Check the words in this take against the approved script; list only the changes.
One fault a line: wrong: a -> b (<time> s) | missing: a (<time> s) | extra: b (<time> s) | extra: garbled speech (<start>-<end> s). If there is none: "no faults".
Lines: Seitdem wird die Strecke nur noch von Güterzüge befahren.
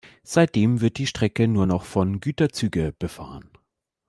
no faults